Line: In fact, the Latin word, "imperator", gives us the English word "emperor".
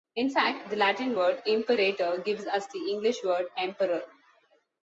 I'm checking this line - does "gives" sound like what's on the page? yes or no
yes